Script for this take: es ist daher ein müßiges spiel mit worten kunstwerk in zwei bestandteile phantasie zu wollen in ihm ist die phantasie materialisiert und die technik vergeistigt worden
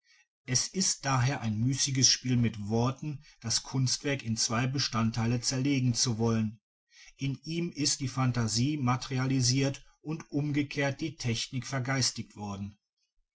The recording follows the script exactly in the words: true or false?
false